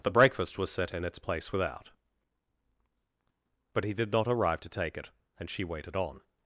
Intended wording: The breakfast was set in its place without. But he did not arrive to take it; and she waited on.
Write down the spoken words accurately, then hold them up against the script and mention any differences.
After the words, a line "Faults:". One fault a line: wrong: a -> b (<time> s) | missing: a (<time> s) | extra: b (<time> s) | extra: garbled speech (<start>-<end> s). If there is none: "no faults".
The breakfast was set in its place without. But he did not arrive to take it; and she waited on.
Faults:
no faults